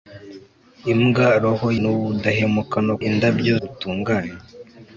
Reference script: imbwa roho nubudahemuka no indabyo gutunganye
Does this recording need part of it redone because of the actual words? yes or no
no